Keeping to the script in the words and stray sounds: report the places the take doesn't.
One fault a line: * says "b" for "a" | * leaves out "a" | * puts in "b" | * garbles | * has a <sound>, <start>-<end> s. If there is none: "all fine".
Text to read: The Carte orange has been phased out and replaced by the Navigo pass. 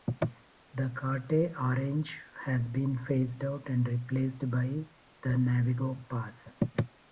all fine